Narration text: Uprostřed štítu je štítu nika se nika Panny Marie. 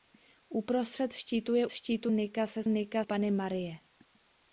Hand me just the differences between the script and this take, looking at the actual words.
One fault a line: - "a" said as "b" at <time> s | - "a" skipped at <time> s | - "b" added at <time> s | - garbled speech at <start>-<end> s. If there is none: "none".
none